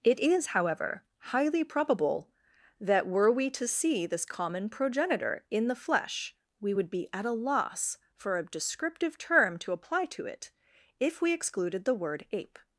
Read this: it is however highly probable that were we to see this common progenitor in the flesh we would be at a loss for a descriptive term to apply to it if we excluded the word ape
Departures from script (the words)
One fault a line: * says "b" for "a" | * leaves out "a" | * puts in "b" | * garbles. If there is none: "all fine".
all fine